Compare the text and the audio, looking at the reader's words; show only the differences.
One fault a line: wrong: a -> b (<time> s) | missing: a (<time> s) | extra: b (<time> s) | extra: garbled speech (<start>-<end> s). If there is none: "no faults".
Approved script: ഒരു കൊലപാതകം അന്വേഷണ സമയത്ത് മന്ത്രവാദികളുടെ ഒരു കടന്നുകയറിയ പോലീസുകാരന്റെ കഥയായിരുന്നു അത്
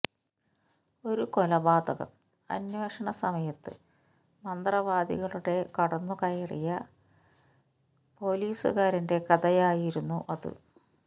missing: ഒരു (5.5 s)